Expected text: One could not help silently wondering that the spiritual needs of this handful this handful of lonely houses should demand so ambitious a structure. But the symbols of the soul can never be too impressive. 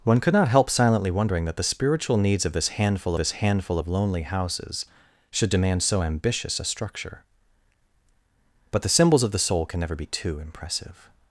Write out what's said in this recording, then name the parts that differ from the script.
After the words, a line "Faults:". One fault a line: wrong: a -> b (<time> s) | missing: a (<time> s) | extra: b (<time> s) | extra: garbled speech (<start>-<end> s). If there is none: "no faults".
One could not help silently wondering that the spiritual needs of this handful this handful of lonely houses should demand so ambitious a structure. But the symbols of the soul can never be too impressive.
Faults:
no faults